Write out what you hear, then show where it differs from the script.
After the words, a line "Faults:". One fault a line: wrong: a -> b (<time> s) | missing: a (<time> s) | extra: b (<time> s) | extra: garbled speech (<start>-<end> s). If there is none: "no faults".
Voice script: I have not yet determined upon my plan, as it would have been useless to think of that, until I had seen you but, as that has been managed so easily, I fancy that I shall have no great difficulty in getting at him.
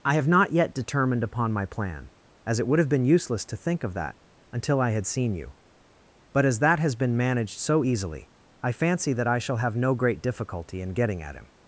I have not yet determined upon my plan, as it would have been useless to think of that, until I had seen you but, as that has been managed so easily, I fancy that I shall have no great difficulty in getting at him.
Faults:
no faults